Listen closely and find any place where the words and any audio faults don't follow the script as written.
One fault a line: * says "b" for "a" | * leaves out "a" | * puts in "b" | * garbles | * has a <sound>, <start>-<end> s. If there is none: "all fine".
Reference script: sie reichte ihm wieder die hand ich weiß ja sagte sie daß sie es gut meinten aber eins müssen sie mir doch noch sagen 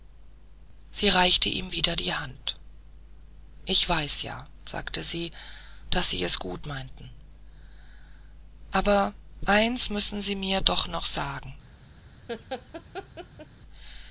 * has a laugh, 12.3-13.5 s